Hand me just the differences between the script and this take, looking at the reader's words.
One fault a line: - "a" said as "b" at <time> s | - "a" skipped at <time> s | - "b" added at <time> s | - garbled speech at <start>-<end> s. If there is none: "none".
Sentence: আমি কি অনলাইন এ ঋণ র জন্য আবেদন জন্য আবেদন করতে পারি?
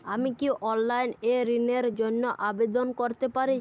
- "জন্য আবেদন" skipped at 2.9 s